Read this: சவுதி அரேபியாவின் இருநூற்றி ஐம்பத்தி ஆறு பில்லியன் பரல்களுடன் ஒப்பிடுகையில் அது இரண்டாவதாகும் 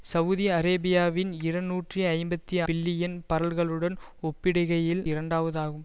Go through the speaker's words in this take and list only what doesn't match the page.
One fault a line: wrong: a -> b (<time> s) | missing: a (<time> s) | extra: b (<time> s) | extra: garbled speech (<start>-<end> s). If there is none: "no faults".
missing: ஆறு (2.6 s)
missing: அது (5.0 s)